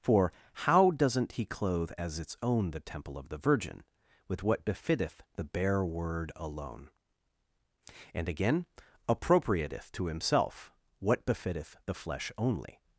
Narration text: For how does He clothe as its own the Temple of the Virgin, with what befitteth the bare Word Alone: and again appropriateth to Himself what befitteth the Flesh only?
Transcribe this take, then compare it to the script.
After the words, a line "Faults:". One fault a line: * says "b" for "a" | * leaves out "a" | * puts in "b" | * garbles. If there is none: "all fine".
For how doesn't He clothe as its own the Temple of the Virgin, with what befitteth the bare Word Alone: and again appropriateth to Himself what befitteth the Flesh only?
Faults:
* says "doesn't" for "does"